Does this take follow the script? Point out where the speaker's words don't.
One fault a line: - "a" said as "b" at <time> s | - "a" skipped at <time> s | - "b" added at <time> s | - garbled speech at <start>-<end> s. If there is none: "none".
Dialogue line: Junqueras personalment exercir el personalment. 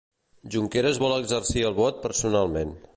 - "personalment" said as "vol" at 1.0 s
- "vot" added at 1.8 s